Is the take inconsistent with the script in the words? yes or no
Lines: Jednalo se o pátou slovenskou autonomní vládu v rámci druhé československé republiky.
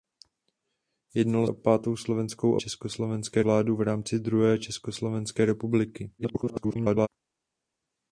yes